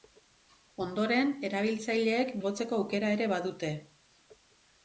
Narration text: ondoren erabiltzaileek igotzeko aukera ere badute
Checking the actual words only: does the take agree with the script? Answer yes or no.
yes